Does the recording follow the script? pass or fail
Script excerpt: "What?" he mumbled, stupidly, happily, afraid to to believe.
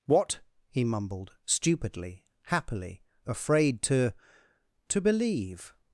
pass